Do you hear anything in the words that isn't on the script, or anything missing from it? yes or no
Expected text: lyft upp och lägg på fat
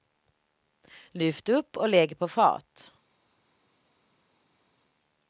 no